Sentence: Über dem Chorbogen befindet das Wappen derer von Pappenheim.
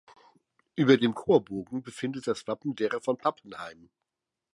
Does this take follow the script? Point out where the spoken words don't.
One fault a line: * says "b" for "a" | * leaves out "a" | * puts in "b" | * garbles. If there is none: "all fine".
all fine